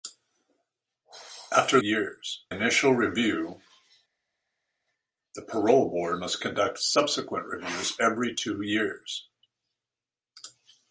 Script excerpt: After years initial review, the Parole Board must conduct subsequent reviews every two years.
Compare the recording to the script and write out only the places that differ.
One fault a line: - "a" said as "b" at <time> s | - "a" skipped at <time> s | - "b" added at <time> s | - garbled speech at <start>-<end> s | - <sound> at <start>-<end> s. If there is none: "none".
none